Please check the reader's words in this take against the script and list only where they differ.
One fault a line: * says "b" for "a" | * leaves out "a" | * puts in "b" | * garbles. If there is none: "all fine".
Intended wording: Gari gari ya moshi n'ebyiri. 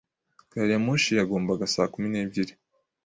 * leaves out "gari"
* puts in "yagombaga saa kumi"